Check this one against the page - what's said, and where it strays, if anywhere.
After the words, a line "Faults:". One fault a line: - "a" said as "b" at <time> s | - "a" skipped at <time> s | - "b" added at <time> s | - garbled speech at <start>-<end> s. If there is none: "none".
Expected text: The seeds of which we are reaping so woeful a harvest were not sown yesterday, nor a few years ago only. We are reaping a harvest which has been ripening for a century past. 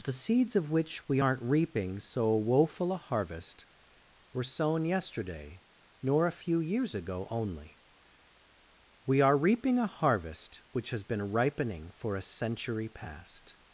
The seeds of which we aren't reaping so woeful a harvest were sown yesterday, nor a few years ago only. We are reaping a harvest which has been ripening for a century past.
Faults:
- "are" said as "aren't" at 1.2 s
- "not" skipped at 4.4 s